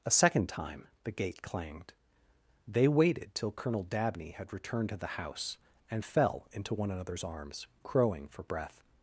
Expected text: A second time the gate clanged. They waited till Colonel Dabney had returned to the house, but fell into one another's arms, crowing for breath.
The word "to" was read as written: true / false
true